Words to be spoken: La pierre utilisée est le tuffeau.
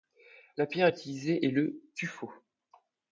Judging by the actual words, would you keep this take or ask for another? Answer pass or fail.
pass